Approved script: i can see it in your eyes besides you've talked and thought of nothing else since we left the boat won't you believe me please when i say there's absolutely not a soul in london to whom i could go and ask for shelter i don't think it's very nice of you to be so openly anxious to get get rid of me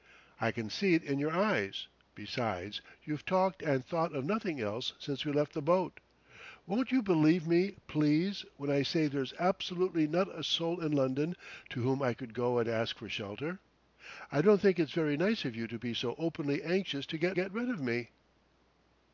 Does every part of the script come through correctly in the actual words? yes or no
yes